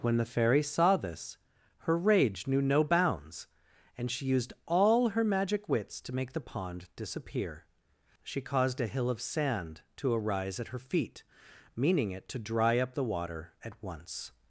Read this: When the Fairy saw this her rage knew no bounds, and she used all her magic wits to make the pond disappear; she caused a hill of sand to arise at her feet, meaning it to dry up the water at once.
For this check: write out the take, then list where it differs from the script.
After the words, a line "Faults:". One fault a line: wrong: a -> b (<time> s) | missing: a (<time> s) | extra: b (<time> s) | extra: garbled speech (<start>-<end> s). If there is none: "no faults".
When the Fairy saw this her rage knew no bounds, and she used all her magic wits to make the pond disappear; she caused a hill of sand to arise at her feet, meaning it to dry up the water at once.
Faults:
no faults